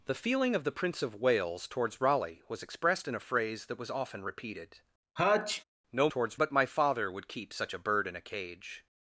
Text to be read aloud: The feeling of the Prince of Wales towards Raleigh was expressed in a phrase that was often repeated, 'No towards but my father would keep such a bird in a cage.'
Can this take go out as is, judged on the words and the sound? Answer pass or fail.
fail